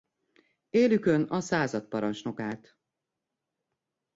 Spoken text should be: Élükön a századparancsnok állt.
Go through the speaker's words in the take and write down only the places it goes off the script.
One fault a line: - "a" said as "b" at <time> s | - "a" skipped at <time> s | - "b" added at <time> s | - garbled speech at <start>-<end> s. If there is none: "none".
none